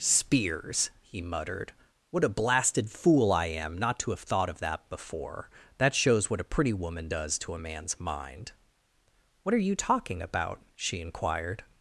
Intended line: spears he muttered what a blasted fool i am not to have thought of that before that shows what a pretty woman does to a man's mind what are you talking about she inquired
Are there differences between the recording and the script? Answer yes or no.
no